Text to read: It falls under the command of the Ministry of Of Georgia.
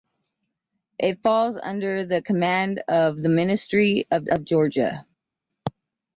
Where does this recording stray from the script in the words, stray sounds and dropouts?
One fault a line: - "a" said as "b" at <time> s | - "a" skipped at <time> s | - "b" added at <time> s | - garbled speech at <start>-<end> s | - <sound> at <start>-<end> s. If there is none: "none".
none